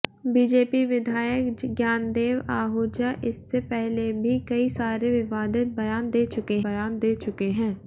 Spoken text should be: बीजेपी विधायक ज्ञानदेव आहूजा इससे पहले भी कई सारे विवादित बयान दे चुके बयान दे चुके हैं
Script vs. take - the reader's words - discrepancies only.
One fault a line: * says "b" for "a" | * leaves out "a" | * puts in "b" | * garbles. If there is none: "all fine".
all fine